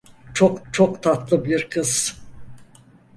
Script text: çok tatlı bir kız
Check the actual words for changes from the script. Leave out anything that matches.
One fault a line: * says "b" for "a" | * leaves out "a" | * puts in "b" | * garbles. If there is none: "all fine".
* puts in "çok"